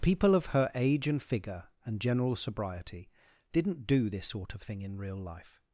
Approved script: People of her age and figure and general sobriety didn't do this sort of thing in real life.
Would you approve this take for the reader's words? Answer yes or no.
yes